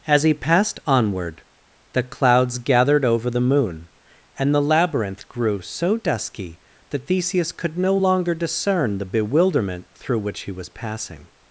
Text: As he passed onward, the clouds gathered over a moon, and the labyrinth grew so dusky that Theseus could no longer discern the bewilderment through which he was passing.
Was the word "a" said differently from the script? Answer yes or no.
yes